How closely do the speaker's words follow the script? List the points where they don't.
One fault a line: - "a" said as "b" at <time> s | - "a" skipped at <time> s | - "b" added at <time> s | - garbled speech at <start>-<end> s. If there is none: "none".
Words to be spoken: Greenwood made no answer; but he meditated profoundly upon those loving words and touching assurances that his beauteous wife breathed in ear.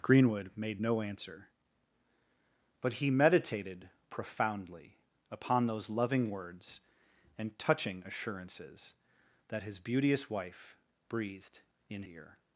none